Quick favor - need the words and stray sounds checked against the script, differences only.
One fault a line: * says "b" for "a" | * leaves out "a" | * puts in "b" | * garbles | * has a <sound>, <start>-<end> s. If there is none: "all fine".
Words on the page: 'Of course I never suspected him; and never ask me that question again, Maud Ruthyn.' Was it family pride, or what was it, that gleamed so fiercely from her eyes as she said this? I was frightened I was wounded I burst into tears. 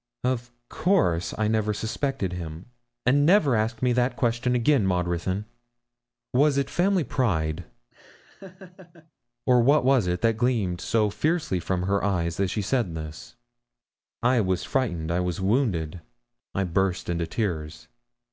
* has a laugh, 7.9-9.1 s